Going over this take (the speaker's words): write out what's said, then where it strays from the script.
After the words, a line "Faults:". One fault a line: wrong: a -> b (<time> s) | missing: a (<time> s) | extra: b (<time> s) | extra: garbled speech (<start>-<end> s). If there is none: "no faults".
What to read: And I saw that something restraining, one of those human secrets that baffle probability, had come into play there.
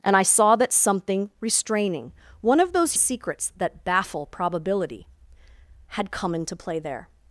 And I saw that something restraining, one of those secrets that baffle probability, had come into play there.
Faults:
missing: human (2.9 s)